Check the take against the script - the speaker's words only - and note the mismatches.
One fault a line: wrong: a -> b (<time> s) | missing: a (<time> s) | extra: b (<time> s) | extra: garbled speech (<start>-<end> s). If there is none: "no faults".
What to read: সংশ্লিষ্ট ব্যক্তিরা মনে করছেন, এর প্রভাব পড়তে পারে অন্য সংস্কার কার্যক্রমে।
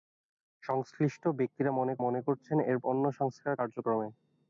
extra: মনে (2.0 s)
missing: প্রভাব পড়তে পারে (2.8 s)